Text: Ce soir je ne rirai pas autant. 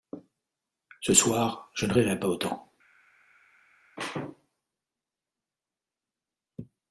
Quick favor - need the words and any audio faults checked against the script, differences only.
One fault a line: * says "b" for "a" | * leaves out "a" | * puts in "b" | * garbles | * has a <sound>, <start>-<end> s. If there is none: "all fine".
all fine